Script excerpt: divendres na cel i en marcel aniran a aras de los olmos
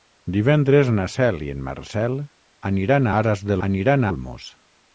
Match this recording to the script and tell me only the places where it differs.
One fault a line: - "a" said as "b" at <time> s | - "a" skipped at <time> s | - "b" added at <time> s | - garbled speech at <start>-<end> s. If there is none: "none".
- "los" said as "aniran" at 3.7 s